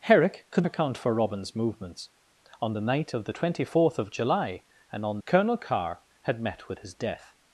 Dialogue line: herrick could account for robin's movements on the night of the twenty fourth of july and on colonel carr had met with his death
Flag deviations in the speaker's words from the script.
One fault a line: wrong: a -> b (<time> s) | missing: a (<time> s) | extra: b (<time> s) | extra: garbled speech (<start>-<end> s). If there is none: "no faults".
no faults